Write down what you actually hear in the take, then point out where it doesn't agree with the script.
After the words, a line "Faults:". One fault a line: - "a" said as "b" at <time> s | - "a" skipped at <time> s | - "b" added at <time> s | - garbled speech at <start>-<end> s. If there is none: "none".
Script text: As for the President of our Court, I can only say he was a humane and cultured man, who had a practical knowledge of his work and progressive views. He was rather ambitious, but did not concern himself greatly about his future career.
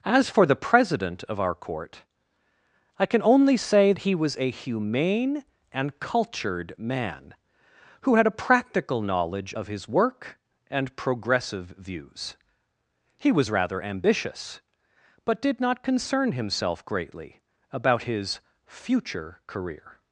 As for the President of our Court, I can only say he was a humane and cultured man, who had a practical knowledge of his work and progressive views. He was rather ambitious, but did not concern himself greatly about his future career.
Faults:
none